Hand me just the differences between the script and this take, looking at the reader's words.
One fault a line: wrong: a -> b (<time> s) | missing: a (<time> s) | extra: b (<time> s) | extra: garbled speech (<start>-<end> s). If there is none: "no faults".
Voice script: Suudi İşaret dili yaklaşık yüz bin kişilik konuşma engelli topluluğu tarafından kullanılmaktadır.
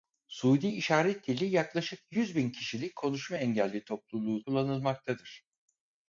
missing: tarafından (4.4 s)